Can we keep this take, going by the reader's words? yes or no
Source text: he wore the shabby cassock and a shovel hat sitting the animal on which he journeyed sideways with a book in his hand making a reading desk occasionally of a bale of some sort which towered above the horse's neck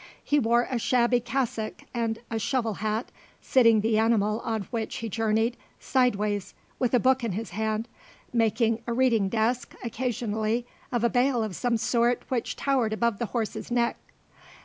no